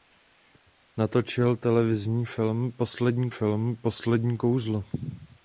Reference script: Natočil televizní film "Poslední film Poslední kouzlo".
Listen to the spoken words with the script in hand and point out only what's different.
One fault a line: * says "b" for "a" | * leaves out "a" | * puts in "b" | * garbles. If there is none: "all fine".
all fine